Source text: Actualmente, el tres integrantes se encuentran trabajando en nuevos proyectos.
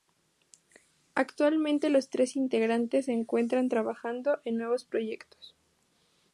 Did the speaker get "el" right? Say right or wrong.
wrong